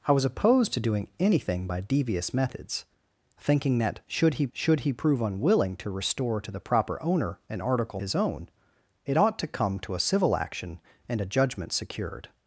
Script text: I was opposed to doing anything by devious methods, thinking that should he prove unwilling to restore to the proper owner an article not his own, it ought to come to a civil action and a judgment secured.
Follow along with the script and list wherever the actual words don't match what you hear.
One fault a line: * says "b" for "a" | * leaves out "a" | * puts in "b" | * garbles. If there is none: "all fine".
* puts in "should he"
* leaves out "not"